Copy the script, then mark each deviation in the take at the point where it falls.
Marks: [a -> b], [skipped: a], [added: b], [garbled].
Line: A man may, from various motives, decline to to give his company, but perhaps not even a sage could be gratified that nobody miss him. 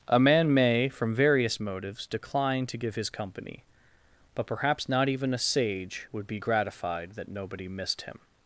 A man may, from various motives, decline to [skipped: to] give his company, but perhaps not even a sage [could -> would] be gratified that nobody [miss -> missed] him.